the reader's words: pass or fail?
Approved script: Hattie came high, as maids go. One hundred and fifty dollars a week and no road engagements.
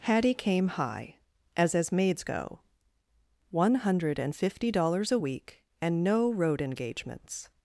fail